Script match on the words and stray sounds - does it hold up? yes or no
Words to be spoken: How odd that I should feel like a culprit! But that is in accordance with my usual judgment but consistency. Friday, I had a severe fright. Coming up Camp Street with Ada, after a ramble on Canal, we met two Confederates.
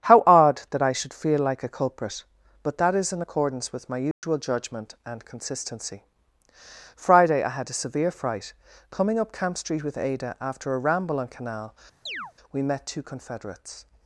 no